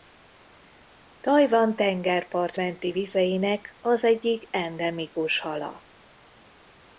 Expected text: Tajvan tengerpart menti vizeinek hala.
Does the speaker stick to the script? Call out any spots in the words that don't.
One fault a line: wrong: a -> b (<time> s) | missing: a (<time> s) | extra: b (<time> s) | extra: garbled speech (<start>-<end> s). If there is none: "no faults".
extra: az egyik endemikus (3.8 s)